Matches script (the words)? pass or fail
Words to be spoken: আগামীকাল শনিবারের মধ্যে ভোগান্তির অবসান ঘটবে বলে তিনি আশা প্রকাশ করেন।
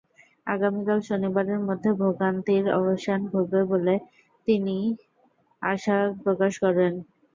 pass